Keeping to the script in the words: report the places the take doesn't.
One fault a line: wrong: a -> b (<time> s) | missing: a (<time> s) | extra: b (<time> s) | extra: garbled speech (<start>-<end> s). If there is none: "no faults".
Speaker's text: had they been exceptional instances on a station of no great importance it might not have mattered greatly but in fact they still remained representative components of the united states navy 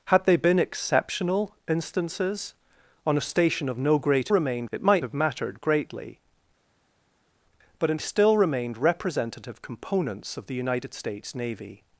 wrong: importance -> remained (4.3 s)
missing: not (5.0 s)
missing: fact they (8.0 s)